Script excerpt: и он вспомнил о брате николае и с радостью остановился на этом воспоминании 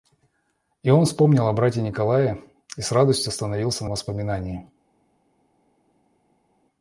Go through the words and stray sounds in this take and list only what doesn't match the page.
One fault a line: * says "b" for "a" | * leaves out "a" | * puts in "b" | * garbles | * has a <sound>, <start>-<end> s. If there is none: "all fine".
* leaves out "этом"